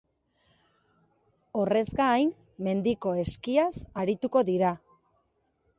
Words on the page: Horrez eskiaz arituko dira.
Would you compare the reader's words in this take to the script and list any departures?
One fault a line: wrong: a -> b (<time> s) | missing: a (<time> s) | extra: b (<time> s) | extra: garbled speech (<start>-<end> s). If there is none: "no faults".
extra: gain mendiko (2.0 s)